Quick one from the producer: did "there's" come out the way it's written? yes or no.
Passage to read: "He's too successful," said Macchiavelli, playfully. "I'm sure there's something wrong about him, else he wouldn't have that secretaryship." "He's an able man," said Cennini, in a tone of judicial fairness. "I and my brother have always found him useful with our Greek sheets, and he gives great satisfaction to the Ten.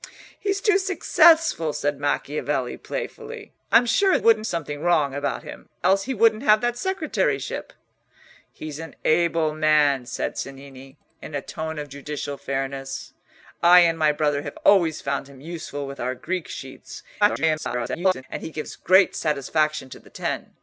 no